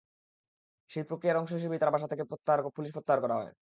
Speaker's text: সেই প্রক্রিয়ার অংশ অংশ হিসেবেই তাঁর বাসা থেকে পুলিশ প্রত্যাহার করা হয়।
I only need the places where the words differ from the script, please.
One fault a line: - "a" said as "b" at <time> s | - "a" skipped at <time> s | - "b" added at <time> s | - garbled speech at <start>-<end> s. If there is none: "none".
- "অংশ" skipped at 1.5 s